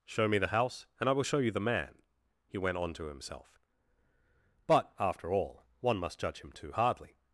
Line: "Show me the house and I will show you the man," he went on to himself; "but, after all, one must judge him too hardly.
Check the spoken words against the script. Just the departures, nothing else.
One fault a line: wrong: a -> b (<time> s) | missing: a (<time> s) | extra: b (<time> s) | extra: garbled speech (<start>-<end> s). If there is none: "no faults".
no faults